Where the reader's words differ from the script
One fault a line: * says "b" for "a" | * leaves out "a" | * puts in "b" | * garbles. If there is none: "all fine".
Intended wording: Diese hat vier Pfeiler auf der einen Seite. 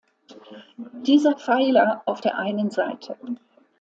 * leaves out "hat vier"